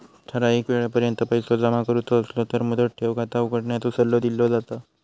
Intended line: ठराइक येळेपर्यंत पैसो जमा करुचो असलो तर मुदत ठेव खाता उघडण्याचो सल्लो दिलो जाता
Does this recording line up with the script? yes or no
yes